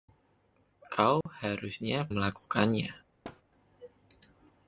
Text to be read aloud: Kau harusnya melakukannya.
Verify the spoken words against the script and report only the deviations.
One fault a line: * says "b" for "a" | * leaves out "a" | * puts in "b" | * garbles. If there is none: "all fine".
all fine